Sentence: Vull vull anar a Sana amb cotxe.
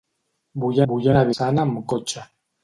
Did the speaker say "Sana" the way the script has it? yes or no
yes